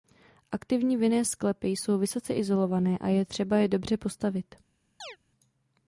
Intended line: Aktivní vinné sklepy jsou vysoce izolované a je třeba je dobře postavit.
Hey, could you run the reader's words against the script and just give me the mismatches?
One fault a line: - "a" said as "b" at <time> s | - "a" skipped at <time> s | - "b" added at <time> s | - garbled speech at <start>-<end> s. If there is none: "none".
none